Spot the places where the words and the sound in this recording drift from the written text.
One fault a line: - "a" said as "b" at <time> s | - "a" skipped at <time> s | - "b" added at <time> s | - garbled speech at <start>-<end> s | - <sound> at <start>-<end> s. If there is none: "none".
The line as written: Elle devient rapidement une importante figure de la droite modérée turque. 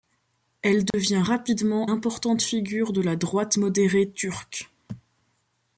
- dropout at 0.9-0.9 s
- "une" skipped at 1.9 s